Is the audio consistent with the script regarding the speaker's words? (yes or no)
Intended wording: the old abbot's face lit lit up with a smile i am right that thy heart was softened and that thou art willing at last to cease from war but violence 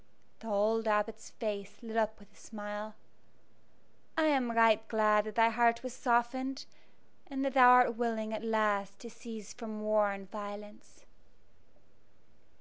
no